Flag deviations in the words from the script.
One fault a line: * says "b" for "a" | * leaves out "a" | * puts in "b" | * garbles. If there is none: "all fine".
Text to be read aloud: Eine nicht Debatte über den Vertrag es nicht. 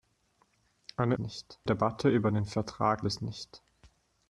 all fine